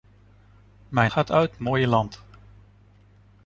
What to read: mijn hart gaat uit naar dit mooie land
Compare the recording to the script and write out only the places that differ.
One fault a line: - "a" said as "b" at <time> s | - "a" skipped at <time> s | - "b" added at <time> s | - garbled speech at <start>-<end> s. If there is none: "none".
- "hart" skipped at 1.1 s
- "naar dit" skipped at 1.6 s